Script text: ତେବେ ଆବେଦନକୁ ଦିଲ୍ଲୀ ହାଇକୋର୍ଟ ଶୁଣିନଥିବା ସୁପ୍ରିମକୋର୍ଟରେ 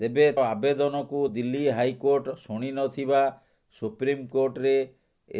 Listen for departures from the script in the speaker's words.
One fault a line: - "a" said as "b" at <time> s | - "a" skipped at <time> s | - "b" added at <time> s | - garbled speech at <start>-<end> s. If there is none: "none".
none